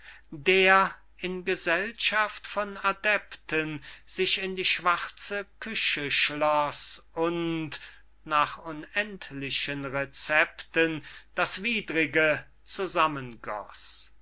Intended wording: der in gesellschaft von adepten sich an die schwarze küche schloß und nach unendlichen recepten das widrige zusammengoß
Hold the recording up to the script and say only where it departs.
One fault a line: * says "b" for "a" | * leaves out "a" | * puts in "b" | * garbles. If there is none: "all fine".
* says "in" for "an"